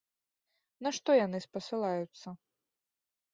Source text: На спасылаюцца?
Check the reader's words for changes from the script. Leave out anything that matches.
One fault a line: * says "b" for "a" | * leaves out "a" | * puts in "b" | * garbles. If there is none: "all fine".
* puts in "што яны"